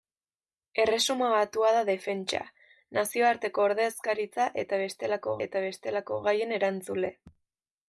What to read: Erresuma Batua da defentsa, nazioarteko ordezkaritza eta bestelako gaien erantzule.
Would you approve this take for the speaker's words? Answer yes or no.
no